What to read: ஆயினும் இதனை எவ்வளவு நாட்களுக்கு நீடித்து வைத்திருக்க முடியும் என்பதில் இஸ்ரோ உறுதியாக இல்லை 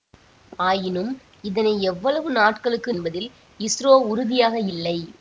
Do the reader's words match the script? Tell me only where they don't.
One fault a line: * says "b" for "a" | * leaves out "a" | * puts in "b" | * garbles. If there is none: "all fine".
* leaves out "நீடித்து வைத்திருக்க முடியும்"